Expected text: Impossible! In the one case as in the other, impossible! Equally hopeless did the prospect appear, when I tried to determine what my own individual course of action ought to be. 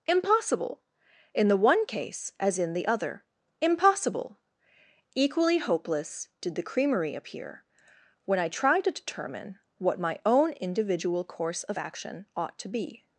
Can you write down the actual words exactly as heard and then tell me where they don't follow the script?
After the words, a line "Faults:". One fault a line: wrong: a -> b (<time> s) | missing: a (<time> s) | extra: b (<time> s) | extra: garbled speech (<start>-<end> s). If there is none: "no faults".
Impossible! In the one case as in the other, impossible! Equally hopeless did the creamery appear, when I tried to determine what my own individual course of action ought to be.
Faults:
wrong: prospect -> creamery (6.6 s)